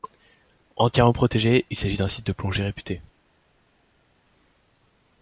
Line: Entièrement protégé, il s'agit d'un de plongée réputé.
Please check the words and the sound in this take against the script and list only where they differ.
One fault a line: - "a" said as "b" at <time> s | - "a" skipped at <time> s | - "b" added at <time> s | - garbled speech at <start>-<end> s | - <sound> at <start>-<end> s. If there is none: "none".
- "site" added at 2.1 s